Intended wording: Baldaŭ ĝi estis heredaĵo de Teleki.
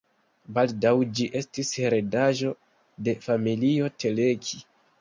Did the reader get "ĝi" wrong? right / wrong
right